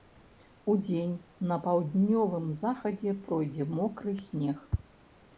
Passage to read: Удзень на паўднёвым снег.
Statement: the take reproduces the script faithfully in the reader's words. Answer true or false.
false